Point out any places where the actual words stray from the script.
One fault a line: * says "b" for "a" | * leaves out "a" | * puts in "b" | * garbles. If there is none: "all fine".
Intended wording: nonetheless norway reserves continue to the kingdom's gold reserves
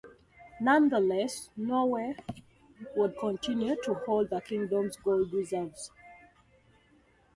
* says "would" for "reserves"
* puts in "hold"